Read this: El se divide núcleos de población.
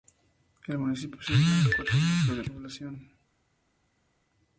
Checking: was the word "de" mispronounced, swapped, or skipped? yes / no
no